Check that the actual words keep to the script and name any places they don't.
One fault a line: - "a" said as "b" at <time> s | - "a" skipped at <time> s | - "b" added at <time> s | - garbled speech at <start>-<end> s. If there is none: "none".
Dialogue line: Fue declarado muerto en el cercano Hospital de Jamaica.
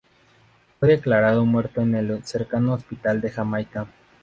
none